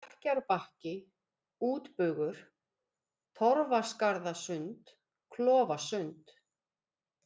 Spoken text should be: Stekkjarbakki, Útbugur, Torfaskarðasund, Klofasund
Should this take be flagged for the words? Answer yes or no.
no